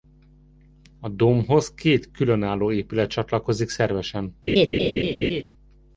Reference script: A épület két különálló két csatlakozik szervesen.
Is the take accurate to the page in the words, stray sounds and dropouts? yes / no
no